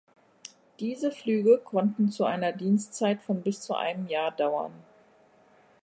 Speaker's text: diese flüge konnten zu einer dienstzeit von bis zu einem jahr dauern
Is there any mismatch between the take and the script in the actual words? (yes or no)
no